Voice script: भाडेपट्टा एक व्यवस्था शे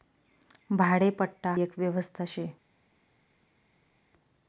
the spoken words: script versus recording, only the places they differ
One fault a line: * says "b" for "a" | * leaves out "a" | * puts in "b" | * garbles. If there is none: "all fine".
all fine